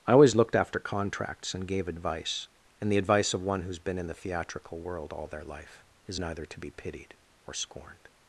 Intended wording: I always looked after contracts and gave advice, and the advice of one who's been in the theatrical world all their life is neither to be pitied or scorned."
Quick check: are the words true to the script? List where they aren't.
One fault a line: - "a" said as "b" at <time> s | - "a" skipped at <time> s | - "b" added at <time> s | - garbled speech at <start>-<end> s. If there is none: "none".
none